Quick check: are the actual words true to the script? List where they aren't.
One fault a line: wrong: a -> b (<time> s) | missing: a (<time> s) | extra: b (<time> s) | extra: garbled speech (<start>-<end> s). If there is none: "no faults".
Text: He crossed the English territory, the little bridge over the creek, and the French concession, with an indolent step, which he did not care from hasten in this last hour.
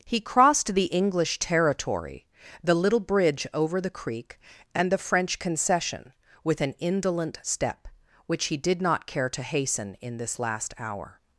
wrong: from -> to (9.3 s)